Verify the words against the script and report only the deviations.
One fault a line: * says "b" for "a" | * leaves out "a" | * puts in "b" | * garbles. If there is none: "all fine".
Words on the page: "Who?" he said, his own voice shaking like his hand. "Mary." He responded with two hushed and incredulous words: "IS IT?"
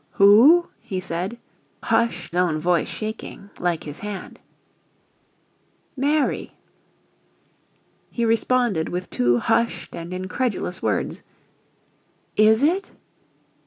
* says "hushed" for "his"